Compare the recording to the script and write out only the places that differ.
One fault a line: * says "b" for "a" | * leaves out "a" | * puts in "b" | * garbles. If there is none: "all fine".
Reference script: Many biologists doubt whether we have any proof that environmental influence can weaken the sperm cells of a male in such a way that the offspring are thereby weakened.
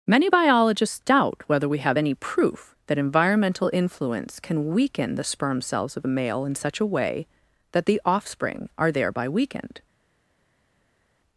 all fine